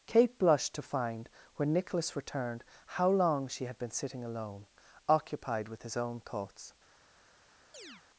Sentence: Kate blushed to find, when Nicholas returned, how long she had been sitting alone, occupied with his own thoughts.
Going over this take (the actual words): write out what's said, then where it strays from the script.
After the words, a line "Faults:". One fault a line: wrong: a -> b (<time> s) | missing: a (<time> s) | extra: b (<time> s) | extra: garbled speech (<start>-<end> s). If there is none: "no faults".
Kate blushed to find, when Nicholas returned, how long she had been sitting alone, occupied with his own thoughts.
Faults:
no faults